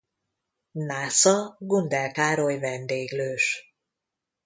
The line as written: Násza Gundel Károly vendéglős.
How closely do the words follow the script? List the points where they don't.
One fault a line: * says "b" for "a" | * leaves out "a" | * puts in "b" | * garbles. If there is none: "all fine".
all fine